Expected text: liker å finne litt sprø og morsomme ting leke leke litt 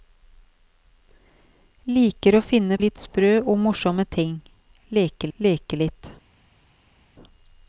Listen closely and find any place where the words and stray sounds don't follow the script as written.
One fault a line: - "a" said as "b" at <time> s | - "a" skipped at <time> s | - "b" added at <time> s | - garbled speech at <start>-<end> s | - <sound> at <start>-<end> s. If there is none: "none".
none